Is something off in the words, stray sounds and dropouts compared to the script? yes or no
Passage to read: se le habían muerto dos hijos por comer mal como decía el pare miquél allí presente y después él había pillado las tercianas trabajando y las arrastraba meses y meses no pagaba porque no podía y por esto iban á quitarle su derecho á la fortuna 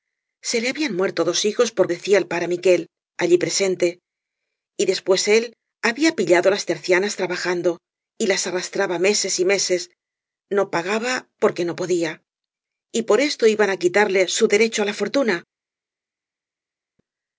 yes